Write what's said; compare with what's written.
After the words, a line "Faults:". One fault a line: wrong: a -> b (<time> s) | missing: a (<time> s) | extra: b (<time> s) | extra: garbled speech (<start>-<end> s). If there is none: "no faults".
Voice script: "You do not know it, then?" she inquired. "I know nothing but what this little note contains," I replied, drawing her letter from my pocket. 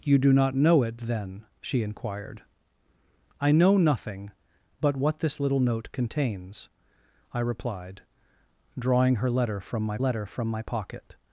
"You do not know it, then?" she inquired. "I know nothing but what this little note contains," I replied, drawing her letter from my letter from my pocket.
Faults:
extra: letter from my (10.0 s)